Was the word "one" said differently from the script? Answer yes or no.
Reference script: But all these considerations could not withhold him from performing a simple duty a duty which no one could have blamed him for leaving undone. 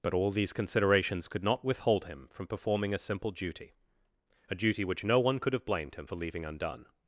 no